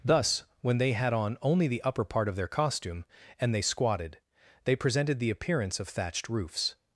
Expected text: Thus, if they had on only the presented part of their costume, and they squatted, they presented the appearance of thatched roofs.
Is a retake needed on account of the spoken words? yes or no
yes